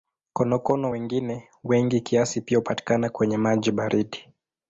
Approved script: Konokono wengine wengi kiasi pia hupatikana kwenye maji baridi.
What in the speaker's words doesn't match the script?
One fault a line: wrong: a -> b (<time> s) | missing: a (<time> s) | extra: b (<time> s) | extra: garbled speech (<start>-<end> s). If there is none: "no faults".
no faults